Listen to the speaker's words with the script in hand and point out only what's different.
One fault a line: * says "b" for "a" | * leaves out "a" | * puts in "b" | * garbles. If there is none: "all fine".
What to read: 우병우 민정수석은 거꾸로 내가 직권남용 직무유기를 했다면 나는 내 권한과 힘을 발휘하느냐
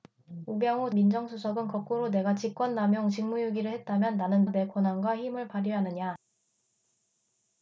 all fine